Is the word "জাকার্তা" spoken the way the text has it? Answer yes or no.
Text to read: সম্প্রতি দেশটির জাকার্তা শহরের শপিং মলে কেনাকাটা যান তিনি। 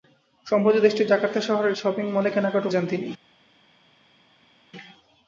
yes